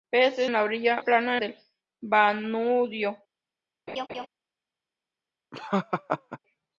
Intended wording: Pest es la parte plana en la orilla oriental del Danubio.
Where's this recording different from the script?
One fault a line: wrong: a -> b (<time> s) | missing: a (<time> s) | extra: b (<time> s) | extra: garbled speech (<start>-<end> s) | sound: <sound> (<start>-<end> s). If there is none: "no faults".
missing: la parte plana (0.5 s)
wrong: oriental -> plana (1.0 s)
sound: laugh (3.9-4.3 s)
sound: laugh (5.5-6.4 s)